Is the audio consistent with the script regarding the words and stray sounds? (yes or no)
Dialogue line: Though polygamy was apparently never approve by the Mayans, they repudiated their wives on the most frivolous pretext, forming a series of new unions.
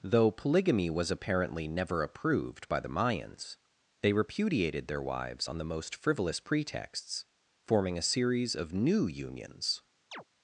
no